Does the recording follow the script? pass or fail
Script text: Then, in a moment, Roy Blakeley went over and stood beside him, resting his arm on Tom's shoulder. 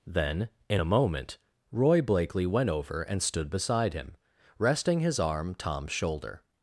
fail